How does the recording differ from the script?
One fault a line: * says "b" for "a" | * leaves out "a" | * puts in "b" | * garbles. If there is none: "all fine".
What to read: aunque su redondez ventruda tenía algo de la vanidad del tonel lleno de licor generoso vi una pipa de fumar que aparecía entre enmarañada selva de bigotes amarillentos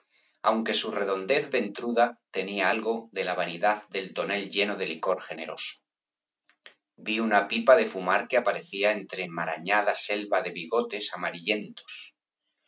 all fine